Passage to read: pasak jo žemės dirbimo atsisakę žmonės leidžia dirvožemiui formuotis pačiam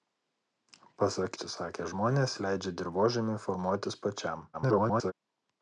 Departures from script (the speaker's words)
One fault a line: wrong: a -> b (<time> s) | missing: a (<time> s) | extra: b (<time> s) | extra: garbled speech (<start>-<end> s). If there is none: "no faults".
missing: jo žemės dirbimo (1.4 s)
extra: garbled speech (4.5-5.1 s)